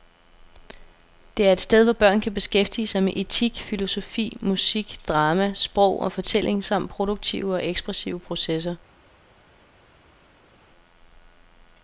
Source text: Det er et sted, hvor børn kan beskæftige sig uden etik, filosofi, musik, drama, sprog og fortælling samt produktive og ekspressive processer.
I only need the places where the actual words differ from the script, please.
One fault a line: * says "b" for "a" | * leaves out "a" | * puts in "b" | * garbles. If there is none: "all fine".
* says "med" for "uden"